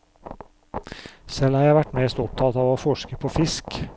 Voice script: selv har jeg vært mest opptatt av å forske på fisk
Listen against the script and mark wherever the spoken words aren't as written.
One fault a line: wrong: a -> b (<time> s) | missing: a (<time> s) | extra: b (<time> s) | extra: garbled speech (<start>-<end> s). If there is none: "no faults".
no faults